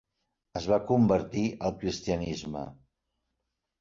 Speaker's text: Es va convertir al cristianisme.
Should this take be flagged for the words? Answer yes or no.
no